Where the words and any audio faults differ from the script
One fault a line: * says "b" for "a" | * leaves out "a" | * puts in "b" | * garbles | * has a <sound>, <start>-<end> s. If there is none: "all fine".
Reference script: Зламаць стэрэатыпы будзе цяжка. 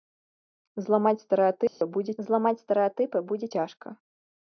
* has a dropout, 1.7-1.8 s
* puts in "зламаць стэрэатыпы будзе"